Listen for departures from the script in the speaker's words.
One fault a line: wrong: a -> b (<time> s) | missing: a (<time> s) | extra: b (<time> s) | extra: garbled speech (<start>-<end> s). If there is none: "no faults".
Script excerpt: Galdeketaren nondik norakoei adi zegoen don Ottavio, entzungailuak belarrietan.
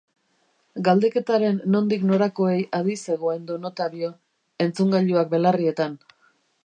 no faults